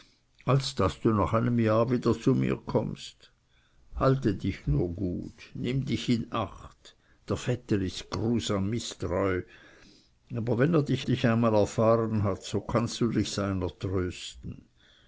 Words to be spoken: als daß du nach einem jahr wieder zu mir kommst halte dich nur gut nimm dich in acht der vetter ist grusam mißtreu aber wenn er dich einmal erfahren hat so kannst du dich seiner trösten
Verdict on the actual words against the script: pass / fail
fail